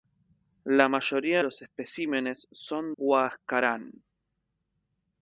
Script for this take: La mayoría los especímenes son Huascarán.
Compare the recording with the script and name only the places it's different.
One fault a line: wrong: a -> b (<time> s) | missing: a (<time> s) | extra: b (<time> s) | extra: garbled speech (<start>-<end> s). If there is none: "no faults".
no faults